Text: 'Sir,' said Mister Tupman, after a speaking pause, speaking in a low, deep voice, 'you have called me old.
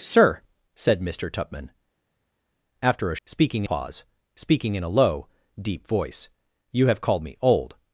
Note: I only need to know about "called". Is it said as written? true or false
true